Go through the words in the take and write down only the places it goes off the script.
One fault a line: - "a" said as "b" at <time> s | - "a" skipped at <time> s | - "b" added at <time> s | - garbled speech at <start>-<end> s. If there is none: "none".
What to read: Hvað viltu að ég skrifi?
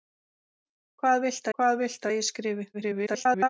- "hvað viltu" added at 1.6 s
- garbled speech at 2.7-3.5 s